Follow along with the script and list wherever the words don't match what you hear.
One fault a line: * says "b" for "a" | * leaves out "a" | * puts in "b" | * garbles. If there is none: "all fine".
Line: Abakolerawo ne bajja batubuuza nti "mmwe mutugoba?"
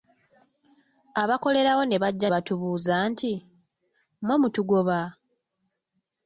all fine